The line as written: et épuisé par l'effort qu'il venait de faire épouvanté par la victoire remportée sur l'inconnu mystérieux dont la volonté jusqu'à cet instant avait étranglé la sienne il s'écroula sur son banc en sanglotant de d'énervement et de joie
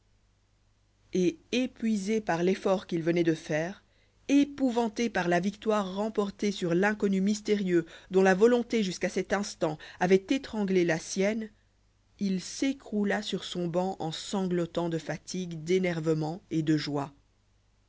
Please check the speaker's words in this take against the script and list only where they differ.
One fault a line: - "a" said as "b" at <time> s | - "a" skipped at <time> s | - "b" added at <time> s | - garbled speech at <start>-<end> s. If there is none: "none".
- "fatigue" added at 15.0 s